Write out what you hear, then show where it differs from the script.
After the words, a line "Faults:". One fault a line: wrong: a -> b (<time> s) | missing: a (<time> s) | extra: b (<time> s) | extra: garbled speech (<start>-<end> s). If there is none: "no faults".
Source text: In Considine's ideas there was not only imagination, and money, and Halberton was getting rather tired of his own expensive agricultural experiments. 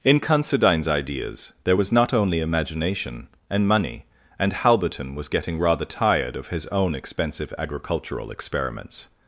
In Considine's ideas there was not only imagination, and money, and Halberton was getting rather tired of his own expensive agricultural experiments.
Faults:
no faults